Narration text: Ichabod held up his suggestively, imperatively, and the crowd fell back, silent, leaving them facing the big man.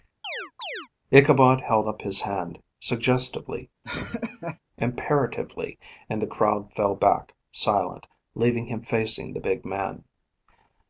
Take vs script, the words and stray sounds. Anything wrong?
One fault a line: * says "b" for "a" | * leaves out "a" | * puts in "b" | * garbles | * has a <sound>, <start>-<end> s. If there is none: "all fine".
* has a chirp, 0.2-0.9 s
* puts in "hand"
* has a laugh, 3.8-4.6 s
* says "him" for "them"